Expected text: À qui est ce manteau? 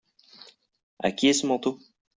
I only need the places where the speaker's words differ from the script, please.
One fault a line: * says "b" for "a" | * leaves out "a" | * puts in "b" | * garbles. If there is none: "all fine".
all fine